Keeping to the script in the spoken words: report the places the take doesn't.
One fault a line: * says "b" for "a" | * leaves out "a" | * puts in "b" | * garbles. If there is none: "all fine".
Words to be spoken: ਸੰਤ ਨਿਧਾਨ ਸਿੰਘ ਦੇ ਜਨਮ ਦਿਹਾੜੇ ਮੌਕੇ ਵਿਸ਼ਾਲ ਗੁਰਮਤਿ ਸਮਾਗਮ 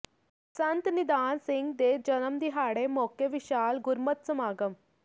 all fine